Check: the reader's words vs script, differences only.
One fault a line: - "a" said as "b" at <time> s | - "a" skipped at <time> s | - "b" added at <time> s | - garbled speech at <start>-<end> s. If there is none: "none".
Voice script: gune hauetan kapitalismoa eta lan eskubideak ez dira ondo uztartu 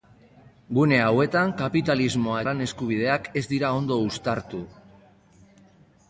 - "eta" skipped at 2.4 s